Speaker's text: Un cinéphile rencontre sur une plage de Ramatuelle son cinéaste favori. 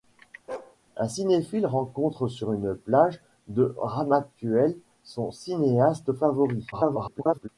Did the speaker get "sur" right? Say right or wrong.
right